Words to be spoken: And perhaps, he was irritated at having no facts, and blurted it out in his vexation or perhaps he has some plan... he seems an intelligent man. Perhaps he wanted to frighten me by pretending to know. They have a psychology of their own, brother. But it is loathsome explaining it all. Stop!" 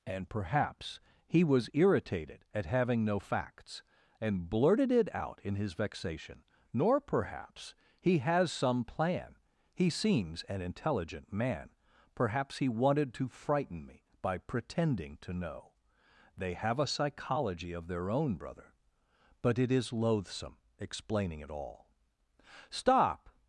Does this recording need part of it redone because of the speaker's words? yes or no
yes